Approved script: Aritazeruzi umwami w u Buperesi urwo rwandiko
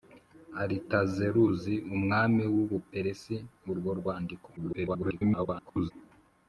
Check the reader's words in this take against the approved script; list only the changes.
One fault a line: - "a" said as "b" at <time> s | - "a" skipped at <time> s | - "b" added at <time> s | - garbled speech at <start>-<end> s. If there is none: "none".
- garbled speech at 4.6-5.9 s